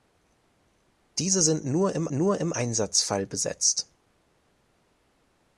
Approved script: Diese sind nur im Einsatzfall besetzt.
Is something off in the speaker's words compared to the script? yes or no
yes